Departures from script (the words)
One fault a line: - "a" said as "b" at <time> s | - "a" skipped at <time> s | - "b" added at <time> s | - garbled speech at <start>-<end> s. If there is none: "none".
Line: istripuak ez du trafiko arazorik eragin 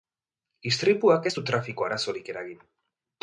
none